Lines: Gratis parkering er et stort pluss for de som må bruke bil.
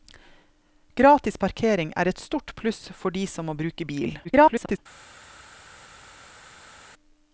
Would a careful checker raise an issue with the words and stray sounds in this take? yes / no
yes